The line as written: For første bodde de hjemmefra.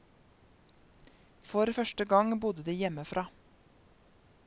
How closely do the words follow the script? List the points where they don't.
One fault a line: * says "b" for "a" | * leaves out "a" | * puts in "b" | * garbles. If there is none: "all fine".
* puts in "gang"